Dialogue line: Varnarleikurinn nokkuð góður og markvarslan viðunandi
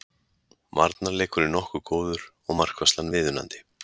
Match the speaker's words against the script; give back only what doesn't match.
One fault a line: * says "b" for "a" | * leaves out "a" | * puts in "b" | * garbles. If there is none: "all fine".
all fine